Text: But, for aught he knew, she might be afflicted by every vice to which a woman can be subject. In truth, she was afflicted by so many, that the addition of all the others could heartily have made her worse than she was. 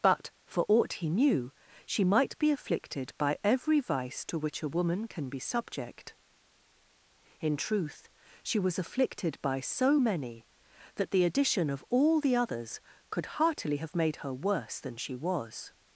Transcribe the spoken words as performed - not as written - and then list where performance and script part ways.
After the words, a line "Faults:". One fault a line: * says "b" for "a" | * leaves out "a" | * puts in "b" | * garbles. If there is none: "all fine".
But, for aught he knew, she might be afflicted by every vice to which a woman can be subject. In truth, she was afflicted by so many, that the addition of all the others could heartily have made her worse than she was.
Faults:
all fine